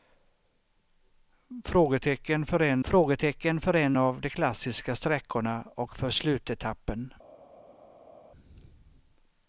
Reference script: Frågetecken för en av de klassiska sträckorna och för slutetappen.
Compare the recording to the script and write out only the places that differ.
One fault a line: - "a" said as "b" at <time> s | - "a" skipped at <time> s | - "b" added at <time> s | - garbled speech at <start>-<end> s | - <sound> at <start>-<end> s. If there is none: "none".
- "frågetecken för en" added at 2.8 s